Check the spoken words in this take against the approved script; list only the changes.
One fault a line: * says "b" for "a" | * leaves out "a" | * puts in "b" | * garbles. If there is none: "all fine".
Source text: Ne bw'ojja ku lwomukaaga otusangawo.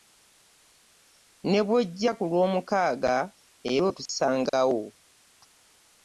* puts in "era"